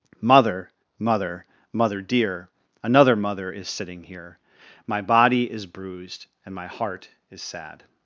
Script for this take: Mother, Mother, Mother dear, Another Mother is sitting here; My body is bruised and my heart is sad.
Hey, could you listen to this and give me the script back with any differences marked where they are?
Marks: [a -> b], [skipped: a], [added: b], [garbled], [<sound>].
Mother, Mother, Mother dear, Another Mother is sitting here; My body is bruised and my heart is sad.